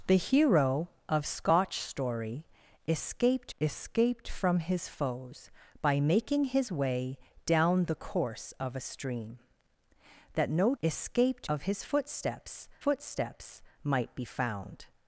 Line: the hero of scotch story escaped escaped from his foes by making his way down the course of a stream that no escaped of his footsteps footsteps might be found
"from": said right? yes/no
yes